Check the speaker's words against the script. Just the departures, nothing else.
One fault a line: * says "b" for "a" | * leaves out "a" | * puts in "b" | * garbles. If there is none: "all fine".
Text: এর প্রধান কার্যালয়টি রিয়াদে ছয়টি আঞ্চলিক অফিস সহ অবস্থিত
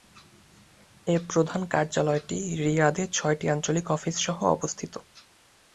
all fine